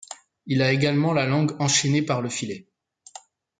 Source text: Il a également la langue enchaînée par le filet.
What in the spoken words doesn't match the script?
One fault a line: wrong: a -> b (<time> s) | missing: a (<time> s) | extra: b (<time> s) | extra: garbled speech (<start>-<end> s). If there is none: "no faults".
no faults